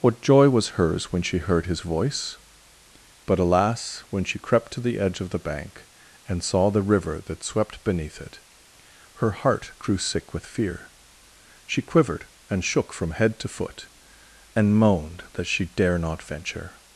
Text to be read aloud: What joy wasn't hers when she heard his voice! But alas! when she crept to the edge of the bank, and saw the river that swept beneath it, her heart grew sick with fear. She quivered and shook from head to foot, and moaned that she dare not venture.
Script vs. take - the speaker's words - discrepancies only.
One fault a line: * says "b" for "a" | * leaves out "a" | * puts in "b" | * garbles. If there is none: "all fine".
* says "was" for "wasn't"